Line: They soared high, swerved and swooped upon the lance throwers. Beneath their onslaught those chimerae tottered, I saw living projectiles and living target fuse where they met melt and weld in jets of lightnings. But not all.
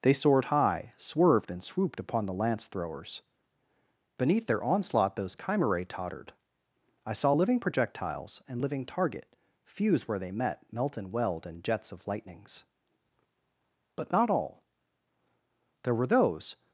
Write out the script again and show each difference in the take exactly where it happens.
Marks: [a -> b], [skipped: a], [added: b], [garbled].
They soared high, swerved and swooped upon the lance throwers. Beneath their onslaught those chimerae tottered, I saw living projectiles and living target fuse where they met melt and weld in jets of lightnings. But not all. [added: There were those]